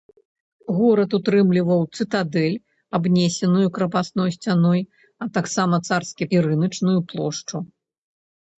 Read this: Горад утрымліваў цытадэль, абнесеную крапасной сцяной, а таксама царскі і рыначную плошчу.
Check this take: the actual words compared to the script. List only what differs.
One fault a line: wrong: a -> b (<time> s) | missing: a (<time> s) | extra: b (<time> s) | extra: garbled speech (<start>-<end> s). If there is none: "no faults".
no faults